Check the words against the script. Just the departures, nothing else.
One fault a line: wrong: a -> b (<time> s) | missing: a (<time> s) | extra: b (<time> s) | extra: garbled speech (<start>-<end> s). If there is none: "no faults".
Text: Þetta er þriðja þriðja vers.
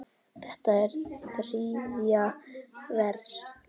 missing: þriðja (2.3 s)